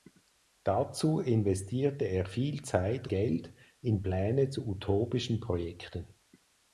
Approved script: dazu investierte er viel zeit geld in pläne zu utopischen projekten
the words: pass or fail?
pass